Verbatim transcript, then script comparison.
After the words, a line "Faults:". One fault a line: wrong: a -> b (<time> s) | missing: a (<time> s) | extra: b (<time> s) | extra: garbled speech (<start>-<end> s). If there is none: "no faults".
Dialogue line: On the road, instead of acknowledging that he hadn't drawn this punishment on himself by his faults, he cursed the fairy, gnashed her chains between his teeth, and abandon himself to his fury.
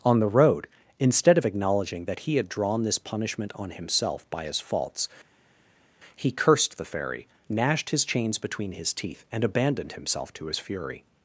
On the road, instead of acknowledging that he had drawn this punishment on himself by his faults, he cursed the fairy, gnashed his chains between his teeth, and abandoned himself to his fury.
Faults:
wrong: hadn't -> had (2.4 s)
wrong: her -> his (7.9 s)
wrong: abandon -> abandoned (9.4 s)